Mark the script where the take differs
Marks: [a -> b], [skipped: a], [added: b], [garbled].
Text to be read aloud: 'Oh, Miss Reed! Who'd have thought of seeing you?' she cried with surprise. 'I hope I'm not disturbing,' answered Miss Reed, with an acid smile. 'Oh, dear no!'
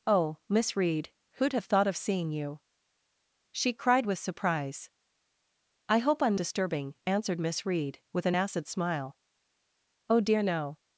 'Oh, Miss Reed! Who'd have thought of seeing you?' she cried with surprise. 'I hope I'm [skipped: not] disturbing,' answered Miss Reed, with an acid smile. 'Oh, dear no!'